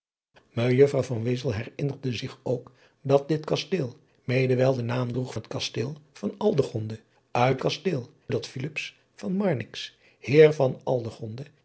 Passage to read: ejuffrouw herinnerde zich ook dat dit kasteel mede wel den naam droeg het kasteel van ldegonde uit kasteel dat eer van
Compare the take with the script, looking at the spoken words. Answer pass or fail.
pass